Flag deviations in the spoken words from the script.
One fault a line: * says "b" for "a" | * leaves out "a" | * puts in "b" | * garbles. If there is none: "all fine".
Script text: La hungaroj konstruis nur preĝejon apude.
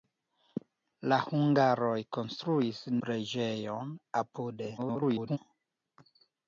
* leaves out "nur"
* garbles